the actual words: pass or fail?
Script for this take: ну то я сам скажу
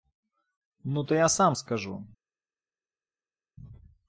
pass